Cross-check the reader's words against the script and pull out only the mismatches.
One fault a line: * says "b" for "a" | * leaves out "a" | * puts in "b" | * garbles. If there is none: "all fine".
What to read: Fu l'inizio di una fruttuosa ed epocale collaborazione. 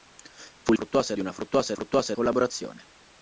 * says "fruttuosa" for "l'inizio"
* says "fruttuosa" for "epocale"